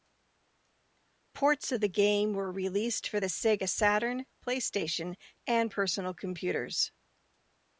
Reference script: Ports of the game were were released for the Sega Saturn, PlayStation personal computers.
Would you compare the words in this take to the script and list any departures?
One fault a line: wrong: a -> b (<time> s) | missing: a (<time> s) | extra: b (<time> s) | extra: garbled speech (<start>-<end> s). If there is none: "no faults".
missing: were (2.5 s)
extra: and (5.5 s)